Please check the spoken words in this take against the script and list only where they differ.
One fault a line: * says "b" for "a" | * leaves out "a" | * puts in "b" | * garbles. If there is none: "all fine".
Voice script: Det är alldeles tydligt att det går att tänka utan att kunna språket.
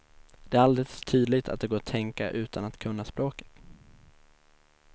all fine